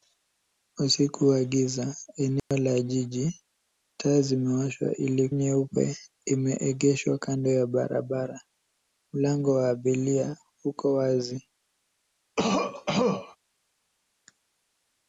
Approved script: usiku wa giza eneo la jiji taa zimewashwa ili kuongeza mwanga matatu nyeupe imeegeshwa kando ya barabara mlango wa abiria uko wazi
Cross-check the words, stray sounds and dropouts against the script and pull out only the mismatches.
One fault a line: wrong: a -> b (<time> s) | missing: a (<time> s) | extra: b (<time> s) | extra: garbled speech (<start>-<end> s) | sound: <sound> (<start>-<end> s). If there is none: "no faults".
sound: dropout (2.4-2.5 s)
missing: kuongeza mwanga matatu (5.3 s)
sound: cough (12.4-13.4 s)